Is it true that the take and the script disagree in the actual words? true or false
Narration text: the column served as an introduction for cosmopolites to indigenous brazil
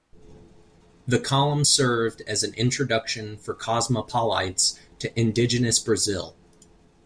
false